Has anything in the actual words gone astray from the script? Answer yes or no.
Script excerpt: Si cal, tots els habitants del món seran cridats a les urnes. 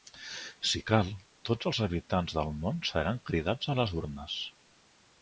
no